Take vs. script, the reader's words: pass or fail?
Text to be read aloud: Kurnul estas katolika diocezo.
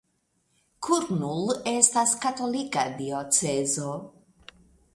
pass